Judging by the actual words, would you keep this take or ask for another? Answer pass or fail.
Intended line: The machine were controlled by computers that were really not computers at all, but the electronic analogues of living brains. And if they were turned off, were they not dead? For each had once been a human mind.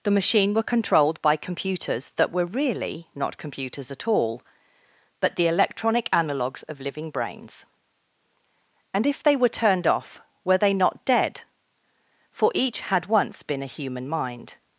pass